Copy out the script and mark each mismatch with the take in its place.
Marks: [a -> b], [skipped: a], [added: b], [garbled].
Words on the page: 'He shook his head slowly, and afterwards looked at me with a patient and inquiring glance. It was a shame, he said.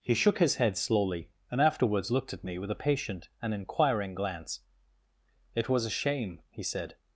'He shook his head slowly, and afterwards looked at me with a patient and inquiring glance. It was a shame, he said.